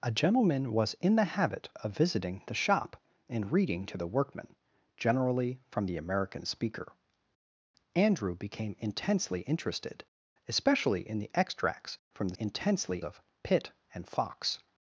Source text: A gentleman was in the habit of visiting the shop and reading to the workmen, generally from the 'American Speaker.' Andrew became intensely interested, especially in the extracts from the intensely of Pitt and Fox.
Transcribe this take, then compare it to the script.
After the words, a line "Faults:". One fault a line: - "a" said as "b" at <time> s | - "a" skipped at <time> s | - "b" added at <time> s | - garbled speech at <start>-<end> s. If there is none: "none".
A gentleman was in the habit of visiting the shop and reading to the workmen, generally from the 'American Speaker.' Andrew became intensely interested, especially in the extracts from the intensely of Pitt and Fox.
Faults:
none